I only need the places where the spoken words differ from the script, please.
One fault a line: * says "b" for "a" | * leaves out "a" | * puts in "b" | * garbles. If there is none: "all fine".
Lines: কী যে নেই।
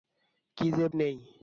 all fine